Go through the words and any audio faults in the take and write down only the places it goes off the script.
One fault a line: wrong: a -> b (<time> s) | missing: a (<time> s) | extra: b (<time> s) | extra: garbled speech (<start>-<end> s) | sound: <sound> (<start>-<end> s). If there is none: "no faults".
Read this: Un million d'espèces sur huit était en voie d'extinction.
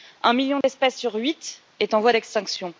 sound: dropout (0.6-0.6 s)
wrong: était -> est (1.8 s)